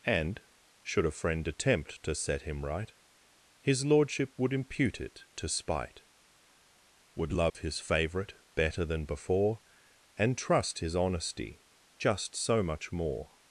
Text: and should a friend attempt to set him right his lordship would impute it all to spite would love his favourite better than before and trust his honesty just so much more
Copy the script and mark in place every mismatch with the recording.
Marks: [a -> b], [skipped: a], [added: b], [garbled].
and should a friend attempt to set him right his lordship would impute it [skipped: all] to spite would love his favourite better than before and trust his honesty just so much more